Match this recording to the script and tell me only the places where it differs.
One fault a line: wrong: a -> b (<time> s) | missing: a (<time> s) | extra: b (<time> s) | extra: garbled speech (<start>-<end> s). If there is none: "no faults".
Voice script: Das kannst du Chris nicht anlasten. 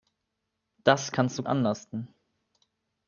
missing: Chris nicht (1.4 s)